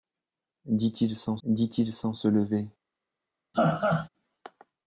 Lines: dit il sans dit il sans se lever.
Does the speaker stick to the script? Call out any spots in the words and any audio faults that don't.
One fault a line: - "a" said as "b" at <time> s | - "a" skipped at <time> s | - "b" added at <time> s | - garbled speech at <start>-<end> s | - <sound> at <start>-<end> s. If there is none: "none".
- laugh at 3.5-4.1 s